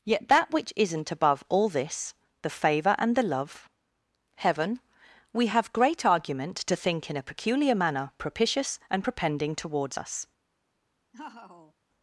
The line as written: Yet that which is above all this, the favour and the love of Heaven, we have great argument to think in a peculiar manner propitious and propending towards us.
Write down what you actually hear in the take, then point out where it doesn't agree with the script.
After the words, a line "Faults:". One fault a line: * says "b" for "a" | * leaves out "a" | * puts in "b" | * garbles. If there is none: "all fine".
Yet that which isn't above all this, the favour and the love Heaven, we have great argument to think in a peculiar manner propitious and propending towards us.
Faults:
* says "isn't" for "is"
* leaves out "of"